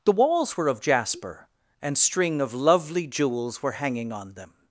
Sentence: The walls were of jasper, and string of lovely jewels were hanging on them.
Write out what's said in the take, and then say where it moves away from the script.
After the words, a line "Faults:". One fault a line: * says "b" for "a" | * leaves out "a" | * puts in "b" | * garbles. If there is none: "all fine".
The walls were of jasper, and string of lovely jewels were hanging on them.
Faults:
all fine